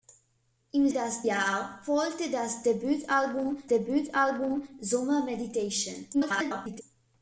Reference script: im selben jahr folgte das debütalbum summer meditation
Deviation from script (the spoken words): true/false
true